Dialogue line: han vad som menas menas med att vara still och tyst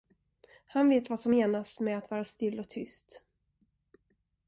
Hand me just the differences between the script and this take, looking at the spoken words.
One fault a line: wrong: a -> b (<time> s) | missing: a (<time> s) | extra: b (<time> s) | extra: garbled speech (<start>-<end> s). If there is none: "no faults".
extra: vet (0.9 s)
missing: menas (1.8 s)